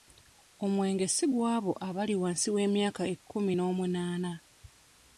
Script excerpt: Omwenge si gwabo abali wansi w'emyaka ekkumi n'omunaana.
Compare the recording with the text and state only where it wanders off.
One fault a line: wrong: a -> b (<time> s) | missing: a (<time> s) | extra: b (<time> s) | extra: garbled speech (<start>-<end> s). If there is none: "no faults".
no faults